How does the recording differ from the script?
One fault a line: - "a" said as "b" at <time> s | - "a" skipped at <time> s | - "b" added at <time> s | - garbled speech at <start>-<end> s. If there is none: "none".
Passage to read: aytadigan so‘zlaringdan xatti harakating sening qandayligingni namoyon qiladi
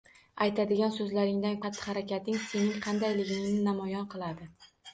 none